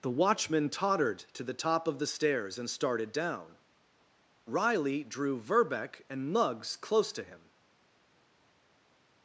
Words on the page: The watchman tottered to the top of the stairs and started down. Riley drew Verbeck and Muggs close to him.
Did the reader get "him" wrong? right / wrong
right